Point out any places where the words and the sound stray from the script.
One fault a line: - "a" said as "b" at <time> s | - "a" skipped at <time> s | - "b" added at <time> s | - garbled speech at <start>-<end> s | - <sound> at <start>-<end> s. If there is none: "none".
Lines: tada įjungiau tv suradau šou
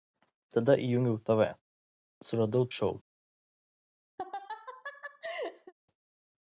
- laugh at 4.2-5.7 s